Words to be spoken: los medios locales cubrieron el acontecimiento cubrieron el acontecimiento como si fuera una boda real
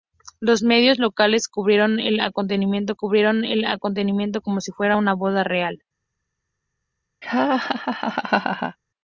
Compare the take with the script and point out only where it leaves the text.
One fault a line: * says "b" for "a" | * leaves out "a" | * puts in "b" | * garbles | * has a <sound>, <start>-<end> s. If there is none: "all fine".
* has a laugh, 7.2-8.8 s